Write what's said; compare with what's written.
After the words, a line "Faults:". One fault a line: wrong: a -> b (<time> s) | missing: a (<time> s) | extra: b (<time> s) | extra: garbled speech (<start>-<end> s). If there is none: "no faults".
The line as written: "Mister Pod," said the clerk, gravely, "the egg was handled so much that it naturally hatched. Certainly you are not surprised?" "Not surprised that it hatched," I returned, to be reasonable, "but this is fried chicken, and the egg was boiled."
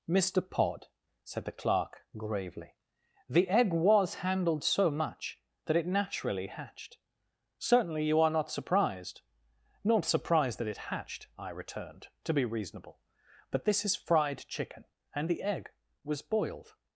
"Mister Pod," said the clerk, gravely, "the egg was handled so much that it naturally hatched. Certainly you are not surprised?" "Not surprised that it hatched," I returned, to be reasonable, "but this is fried chicken, and the egg was boiled."
Faults:
no faults